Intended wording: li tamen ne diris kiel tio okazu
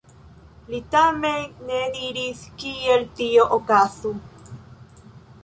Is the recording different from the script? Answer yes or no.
no